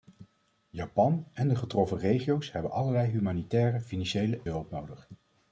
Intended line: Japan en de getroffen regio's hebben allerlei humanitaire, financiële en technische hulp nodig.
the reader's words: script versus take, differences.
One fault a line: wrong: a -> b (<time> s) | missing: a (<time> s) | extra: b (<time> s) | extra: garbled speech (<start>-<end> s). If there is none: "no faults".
missing: en technische (4.4 s)